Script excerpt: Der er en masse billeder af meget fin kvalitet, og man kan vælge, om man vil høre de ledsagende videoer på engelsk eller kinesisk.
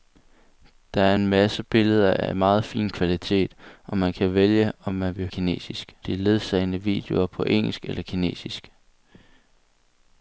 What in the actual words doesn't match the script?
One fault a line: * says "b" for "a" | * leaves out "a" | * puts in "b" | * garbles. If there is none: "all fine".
* says "kinesisk" for "høre"